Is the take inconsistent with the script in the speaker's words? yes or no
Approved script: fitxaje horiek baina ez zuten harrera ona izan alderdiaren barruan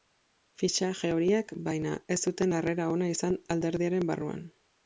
no